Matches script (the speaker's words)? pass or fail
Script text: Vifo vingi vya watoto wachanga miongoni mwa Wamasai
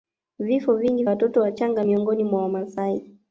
fail